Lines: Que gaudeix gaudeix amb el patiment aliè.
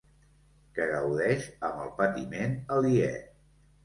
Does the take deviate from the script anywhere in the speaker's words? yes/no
yes